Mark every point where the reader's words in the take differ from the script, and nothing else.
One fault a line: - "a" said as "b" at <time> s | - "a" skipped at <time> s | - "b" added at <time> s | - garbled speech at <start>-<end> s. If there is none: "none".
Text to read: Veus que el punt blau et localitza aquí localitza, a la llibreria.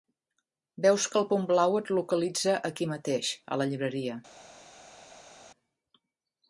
- "localitza" said as "mateix" at 2.9 s